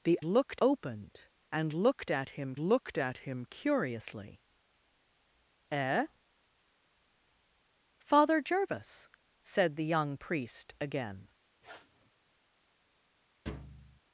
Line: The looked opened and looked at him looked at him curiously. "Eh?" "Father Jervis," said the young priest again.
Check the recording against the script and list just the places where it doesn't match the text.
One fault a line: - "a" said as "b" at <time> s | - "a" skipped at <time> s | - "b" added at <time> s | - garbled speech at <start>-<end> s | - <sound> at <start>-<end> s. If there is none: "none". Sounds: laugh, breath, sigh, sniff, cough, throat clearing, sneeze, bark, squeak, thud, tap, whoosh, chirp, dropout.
- sniff at 11.6-12.1 s
- thud at 13.5-14.0 s